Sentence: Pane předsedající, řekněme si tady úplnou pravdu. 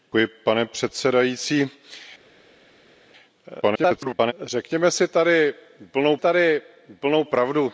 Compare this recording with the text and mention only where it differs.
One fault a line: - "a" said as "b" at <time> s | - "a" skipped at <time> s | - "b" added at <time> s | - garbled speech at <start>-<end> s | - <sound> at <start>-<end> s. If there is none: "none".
- garbled speech at 3.6-4.3 s
- "tady úplnou" added at 6.2 s